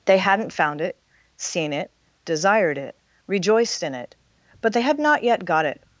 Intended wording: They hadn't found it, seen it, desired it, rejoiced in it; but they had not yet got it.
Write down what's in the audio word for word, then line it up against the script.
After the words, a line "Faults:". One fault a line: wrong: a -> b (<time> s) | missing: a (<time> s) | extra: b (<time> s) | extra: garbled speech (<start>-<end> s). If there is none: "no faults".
They hadn't found it, seen it, desired it, rejoiced in it; but they had not yet got it.
Faults:
no faults